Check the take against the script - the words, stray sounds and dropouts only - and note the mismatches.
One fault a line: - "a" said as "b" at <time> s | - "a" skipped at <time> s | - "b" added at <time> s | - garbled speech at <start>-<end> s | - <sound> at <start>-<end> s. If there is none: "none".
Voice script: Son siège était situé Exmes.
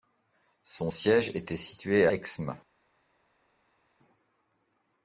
none